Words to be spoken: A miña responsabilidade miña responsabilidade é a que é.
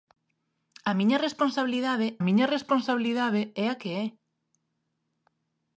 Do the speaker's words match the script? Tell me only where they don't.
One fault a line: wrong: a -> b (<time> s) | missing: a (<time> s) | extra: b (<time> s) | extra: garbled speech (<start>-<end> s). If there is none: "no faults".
no faults